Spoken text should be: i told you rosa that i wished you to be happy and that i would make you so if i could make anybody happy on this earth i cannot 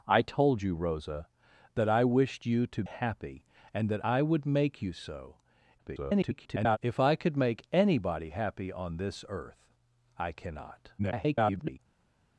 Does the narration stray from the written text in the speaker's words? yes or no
yes